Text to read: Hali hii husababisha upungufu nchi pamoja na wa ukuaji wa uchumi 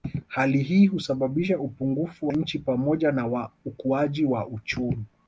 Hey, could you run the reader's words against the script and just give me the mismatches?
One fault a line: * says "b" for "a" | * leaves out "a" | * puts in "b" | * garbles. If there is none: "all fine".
all fine